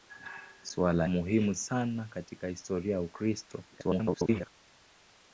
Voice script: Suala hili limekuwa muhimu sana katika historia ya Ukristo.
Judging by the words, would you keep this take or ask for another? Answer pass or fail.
fail